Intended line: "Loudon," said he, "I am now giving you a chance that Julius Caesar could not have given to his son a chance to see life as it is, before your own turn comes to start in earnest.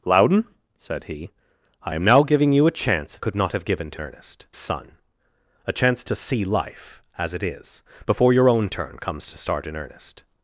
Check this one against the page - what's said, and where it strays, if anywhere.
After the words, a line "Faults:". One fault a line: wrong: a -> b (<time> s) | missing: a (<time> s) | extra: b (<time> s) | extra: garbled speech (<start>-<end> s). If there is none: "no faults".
"Loudon," said he, "I am now giving you a chance could not have given to earnest son a chance to see life as it is, before your own turn comes to start in earnest.
Faults:
missing: that Julius Caesar (3.2 s)
wrong: his -> earnest (4.0 s)